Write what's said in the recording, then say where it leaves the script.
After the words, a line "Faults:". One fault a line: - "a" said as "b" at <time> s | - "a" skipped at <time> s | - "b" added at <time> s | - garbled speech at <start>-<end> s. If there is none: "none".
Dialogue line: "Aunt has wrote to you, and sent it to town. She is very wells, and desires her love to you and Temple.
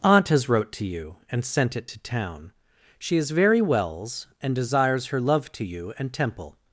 "Aunt has wrote to you, and sent it to town. She is very wells, and desires her love to you and Temple.
Faults:
none